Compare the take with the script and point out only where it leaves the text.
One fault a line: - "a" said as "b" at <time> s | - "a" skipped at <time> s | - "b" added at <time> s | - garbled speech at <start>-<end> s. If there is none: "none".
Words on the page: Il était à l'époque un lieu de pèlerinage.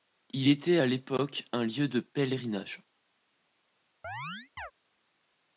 none